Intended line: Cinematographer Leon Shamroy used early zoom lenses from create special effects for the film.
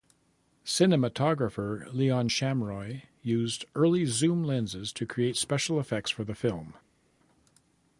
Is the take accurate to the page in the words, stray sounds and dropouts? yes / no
no